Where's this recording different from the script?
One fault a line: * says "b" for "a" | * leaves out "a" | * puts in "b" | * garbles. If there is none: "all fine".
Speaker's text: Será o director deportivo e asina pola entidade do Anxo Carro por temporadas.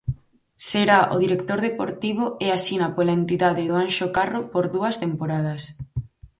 * puts in "dúas"